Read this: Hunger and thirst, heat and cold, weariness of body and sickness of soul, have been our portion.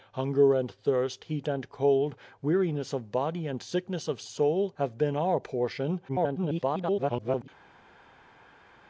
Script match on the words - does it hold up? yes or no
no